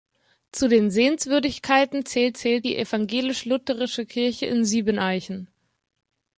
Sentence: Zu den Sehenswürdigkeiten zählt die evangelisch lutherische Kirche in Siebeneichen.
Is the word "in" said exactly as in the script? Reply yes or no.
yes